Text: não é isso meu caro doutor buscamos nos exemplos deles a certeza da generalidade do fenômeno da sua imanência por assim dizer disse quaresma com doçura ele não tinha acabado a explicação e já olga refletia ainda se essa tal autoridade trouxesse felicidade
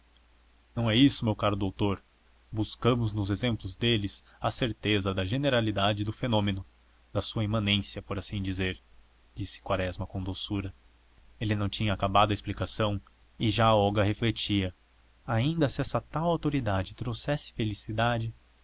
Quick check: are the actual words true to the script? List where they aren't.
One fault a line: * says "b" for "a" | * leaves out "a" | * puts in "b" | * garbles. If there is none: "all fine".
all fine